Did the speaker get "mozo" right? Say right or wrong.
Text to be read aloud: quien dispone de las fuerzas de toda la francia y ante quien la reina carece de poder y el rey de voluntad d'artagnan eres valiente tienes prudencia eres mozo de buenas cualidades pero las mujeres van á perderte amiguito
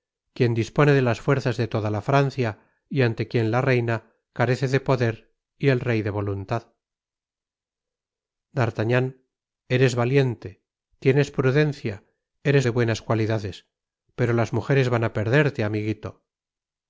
wrong